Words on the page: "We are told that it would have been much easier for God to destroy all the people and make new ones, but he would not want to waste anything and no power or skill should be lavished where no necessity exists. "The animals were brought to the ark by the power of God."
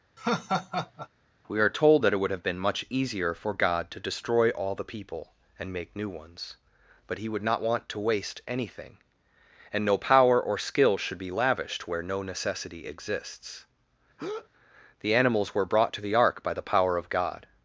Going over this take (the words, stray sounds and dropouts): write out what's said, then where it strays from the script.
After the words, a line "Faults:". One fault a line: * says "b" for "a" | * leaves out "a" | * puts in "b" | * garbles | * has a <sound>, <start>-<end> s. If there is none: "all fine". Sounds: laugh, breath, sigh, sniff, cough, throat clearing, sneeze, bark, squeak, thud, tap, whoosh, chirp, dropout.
"We are told that it would have been much easier for God to destroy all the people and make new ones, but he would not want to waste anything and no power or skill should be lavished where no necessity exists. "The animals were brought to the ark by the power of God."
Faults:
* has a laugh, 0.2-1.1 s
* has a breath, 14.2-14.5 s